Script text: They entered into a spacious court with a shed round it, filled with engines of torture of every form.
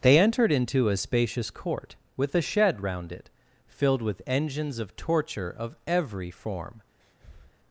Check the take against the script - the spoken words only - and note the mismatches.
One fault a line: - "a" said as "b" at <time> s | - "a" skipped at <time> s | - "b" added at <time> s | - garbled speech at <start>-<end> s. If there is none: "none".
none